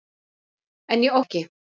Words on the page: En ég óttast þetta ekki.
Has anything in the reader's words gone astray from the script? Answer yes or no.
yes